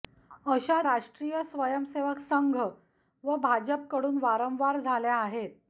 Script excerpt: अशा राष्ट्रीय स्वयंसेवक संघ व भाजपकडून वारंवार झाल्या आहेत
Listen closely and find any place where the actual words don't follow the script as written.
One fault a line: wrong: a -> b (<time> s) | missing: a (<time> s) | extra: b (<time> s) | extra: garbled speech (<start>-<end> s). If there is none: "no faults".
no faults